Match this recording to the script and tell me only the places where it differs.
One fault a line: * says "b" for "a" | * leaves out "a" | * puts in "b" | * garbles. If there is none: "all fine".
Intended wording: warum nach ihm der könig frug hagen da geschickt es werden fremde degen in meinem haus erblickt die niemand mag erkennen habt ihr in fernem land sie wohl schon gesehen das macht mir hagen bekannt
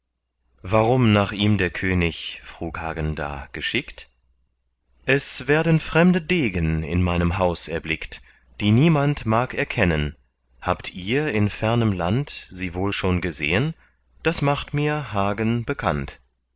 all fine